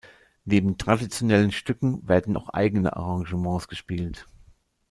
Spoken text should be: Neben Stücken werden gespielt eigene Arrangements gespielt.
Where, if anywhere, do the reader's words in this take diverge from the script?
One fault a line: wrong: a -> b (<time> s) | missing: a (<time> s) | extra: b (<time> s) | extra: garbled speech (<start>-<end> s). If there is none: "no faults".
extra: traditionellen (0.8 s)
wrong: gespielt -> auch (2.3 s)